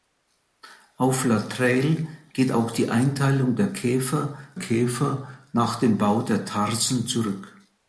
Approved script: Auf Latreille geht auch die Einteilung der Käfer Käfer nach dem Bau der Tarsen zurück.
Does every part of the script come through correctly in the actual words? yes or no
yes